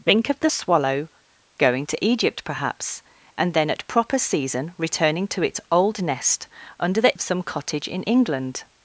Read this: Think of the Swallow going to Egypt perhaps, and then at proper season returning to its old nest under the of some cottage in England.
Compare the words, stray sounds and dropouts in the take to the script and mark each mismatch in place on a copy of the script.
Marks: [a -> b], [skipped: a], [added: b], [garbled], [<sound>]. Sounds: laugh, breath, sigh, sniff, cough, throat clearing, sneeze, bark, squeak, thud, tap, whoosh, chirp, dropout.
Think of the Swallow going to Egypt perhaps, and then at proper season returning to its old nest under the of some cottage in England.